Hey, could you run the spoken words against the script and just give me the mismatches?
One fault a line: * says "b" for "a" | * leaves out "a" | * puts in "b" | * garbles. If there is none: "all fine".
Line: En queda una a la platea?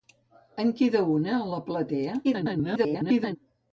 * garbles